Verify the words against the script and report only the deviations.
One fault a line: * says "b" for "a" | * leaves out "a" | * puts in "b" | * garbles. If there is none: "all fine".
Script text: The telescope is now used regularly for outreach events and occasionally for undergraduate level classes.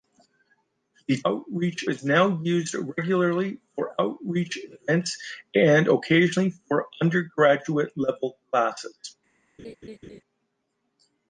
* says "outreach" for "telescope"